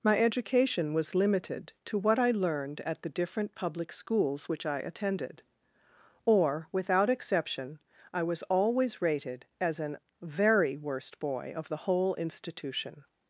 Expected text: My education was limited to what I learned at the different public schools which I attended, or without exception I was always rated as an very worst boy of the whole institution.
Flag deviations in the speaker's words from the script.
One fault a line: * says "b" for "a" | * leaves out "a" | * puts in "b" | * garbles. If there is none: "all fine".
all fine